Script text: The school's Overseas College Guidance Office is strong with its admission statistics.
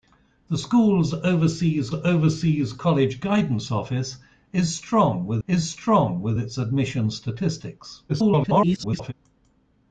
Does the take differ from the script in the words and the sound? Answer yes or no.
yes